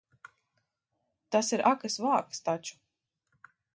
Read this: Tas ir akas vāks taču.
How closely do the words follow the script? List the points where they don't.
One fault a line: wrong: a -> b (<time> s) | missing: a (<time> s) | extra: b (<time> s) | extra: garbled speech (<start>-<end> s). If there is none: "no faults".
no faults